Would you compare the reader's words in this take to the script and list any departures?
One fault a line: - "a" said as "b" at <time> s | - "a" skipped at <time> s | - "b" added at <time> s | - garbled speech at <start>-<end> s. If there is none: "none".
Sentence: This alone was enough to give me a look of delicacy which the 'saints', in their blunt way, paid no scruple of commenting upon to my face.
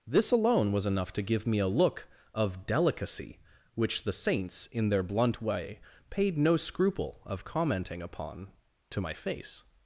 none